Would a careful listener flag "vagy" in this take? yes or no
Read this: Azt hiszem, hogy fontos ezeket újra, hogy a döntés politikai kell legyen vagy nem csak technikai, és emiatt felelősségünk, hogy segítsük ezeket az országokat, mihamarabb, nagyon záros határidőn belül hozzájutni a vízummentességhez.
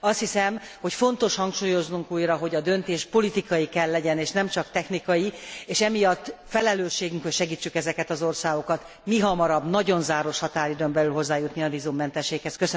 yes